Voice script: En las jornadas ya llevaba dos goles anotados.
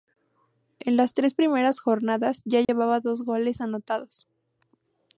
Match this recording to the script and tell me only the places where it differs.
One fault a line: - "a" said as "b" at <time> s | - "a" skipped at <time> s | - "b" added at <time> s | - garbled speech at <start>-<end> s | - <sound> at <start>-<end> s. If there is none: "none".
- "tres primeras" added at 1.1 s
- dropout at 2.6-2.7 s